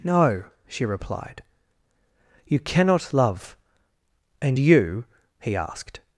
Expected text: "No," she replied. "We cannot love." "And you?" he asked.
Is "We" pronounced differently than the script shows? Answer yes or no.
yes